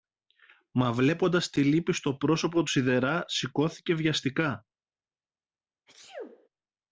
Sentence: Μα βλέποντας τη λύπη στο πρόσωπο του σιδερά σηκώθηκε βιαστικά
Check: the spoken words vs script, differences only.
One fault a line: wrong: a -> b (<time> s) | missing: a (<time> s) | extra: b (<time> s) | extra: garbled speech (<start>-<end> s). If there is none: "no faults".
no faults